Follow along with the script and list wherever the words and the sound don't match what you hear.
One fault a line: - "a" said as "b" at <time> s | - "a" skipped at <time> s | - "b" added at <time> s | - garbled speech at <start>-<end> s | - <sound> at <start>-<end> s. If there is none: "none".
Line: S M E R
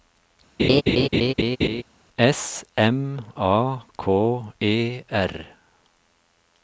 - laugh at 0.6-1.8 s
- "A K" added at 3.4 s